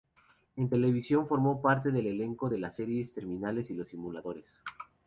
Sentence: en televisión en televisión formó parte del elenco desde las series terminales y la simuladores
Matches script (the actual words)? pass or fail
fail